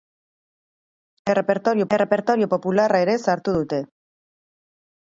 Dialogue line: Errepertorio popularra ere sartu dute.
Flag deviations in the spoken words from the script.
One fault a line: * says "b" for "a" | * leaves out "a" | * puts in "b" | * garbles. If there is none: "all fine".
* puts in "errepertorio"